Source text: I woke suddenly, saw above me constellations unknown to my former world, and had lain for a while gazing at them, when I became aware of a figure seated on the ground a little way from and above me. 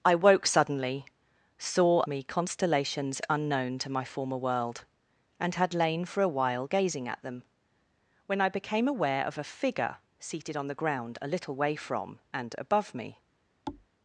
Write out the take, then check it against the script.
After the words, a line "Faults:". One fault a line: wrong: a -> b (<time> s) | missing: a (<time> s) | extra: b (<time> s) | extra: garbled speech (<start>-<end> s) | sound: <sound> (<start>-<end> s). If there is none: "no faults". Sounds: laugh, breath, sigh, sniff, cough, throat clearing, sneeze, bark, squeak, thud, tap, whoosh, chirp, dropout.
I woke suddenly, saw me constellations unknown to my former world, and had lain for a while gazing at them, when I became aware of a figure seated on the ground a little way from and above me.
Faults:
missing: above (2.0 s)
sound: thud (13.7-13.9 s)